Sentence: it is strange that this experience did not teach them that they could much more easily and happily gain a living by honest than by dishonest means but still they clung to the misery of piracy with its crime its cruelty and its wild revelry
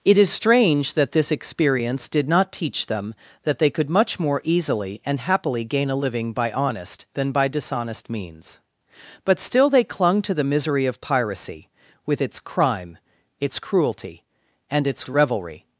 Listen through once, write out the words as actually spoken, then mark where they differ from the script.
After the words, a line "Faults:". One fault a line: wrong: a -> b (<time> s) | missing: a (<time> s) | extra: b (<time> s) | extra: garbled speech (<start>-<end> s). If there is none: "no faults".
it is strange that this experience did not teach them that they could much more easily and happily gain a living by honest than by dishonest means but still they clung to the misery of piracy with its crime its cruelty and its revelry
Faults:
missing: wild (15.1 s)